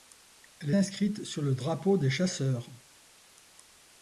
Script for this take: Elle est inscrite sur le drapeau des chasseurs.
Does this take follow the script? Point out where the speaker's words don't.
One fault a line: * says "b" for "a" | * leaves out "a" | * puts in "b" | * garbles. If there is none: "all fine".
* leaves out "est"